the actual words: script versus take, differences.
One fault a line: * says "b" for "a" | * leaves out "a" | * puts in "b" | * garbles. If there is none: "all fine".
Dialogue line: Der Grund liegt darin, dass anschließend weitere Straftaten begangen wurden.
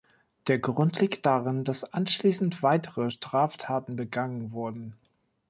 all fine